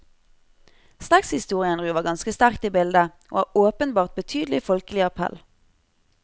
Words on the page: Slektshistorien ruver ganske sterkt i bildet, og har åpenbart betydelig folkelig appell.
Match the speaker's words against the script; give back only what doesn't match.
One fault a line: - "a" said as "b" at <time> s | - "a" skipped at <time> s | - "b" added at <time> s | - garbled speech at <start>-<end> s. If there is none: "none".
none